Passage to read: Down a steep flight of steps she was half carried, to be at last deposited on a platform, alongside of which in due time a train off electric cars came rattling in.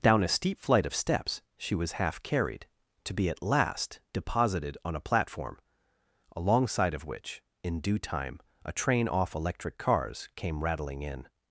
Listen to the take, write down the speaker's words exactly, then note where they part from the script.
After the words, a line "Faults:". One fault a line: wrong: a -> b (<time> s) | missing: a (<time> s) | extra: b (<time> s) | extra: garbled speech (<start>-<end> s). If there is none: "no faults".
Down a steep flight of steps she was half carried, to be at last deposited on a platform, alongside of which in due time a train off electric cars came rattling in.
Faults:
no faults